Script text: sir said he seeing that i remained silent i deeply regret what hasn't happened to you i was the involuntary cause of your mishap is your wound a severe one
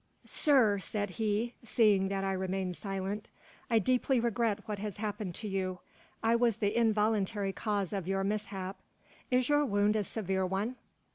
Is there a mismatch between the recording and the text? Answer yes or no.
yes